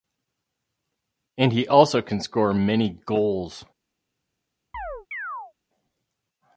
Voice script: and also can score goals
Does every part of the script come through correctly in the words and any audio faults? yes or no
no